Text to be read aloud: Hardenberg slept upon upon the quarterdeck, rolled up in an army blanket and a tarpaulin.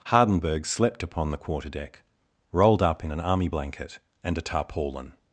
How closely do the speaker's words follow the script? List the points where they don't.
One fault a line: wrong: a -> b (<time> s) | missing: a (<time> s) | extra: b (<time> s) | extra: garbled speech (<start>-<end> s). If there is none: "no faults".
missing: upon (1.3 s)